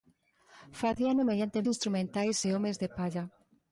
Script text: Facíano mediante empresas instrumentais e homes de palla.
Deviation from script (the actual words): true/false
true